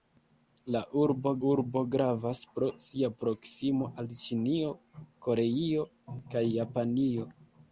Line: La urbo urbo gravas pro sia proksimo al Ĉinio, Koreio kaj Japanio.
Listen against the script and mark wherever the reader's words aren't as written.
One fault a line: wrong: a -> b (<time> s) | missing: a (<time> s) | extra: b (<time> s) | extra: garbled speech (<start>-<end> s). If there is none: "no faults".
no faults